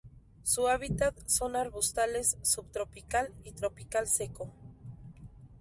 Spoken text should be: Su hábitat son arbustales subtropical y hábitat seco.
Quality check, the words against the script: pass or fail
fail